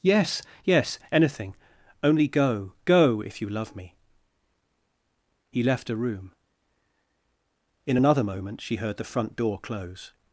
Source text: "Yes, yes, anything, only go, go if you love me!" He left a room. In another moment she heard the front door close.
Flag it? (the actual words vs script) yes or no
no